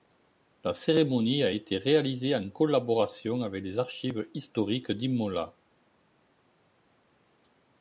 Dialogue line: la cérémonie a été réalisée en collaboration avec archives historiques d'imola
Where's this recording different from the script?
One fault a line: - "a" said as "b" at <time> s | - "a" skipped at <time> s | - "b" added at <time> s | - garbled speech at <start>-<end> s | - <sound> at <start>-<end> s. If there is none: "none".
- "les" added at 3.6 s